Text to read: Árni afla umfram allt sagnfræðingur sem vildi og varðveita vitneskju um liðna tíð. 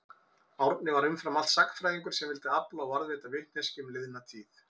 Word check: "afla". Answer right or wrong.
wrong